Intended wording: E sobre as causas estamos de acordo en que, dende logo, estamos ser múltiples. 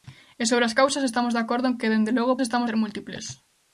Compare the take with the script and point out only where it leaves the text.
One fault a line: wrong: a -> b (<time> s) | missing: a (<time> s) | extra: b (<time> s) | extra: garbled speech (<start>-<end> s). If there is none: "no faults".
no faults